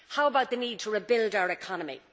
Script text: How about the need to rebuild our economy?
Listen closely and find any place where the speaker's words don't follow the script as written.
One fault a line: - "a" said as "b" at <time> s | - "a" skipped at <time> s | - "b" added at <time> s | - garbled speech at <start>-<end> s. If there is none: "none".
none